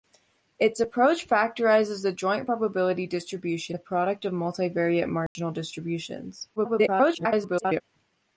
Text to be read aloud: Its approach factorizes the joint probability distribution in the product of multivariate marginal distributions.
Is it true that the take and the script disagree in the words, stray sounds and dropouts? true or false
true